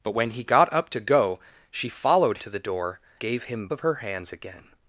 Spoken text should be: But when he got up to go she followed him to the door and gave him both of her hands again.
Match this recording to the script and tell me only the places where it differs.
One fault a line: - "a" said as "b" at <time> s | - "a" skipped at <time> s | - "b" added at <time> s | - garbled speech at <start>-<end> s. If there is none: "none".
- "him" skipped at 2.4 s
- "and" skipped at 3.0 s
- "both" skipped at 3.7 s